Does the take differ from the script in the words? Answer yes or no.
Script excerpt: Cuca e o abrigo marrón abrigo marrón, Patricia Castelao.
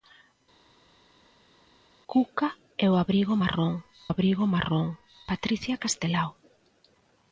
no